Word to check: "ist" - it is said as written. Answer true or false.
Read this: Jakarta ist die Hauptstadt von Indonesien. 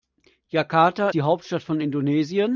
false